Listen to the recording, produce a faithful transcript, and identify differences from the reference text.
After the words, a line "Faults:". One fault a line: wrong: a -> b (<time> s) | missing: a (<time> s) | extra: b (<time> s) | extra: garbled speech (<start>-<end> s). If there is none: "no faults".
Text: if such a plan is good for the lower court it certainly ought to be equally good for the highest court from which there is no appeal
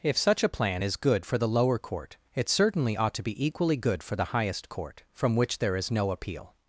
if such a plan is good for the lower court it certainly ought to be equally good for the highest court from which there is no appeal
Faults:
no faults